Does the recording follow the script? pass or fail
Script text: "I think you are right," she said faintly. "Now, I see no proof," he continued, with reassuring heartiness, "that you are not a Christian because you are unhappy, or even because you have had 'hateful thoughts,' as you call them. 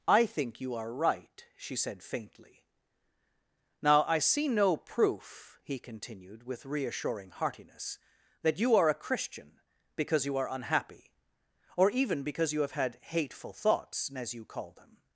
fail